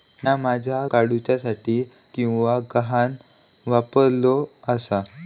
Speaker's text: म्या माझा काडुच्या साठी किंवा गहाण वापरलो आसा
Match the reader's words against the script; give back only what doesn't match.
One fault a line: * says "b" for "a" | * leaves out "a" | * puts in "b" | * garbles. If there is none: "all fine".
all fine